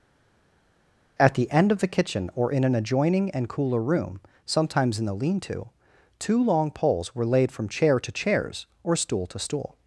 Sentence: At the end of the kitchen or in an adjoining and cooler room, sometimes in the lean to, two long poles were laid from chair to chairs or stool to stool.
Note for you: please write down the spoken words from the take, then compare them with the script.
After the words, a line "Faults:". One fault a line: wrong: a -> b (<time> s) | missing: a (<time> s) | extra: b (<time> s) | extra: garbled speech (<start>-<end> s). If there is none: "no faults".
At the end of the kitchen or in an adjoining and cooler room, sometimes in the lean to, two long poles were laid from chair to chairs or stool to stool.
Faults:
no faults